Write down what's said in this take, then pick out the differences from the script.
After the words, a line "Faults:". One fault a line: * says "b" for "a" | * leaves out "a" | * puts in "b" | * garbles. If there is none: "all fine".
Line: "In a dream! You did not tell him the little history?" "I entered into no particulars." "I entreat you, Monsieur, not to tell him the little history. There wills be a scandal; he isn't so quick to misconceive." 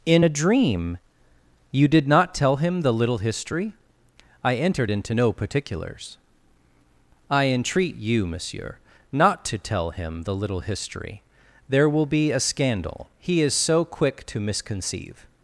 "In a dream! You did not tell him the little history?" "I entered into no particulars." "I entreat you, Monsieur, not to tell him the little history. There will be a scandal; he is so quick to misconceive."
Faults:
* says "will" for "wills"
* says "is" for "isn't"